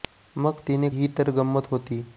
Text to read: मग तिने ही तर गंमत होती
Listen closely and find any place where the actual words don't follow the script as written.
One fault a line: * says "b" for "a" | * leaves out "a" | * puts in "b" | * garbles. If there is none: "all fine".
all fine